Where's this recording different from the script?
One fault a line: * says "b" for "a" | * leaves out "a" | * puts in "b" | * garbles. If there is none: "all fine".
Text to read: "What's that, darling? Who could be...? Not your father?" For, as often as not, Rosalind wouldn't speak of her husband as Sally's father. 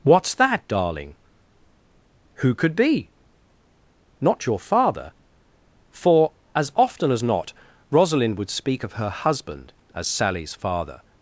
* says "would" for "wouldn't"